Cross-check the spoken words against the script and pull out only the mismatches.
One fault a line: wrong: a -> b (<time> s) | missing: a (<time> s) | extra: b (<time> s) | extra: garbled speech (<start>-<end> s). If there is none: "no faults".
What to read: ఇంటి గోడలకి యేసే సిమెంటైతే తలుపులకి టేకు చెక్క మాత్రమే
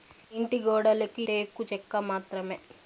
missing: యేసే సిమెంటైతే తలుపులకి (1.2 s)